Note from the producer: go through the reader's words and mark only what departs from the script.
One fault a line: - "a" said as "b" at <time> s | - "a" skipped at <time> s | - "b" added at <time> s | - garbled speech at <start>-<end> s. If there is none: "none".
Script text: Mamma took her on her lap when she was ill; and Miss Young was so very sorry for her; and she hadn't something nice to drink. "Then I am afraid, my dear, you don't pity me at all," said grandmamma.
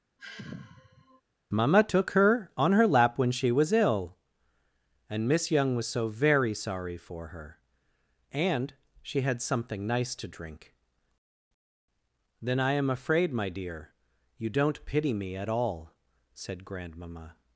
- "hadn't" said as "had" at 9.2 s